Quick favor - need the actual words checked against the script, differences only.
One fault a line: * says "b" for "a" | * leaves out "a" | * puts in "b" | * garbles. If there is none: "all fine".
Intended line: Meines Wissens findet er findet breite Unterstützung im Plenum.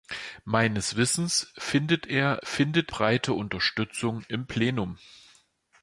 all fine